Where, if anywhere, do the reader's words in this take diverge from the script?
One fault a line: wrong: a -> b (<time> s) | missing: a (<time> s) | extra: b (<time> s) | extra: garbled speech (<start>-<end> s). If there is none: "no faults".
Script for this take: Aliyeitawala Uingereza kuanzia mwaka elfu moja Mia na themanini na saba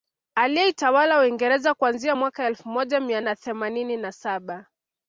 no faults